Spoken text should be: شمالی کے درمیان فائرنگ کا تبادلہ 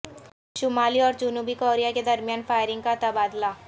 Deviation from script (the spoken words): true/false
true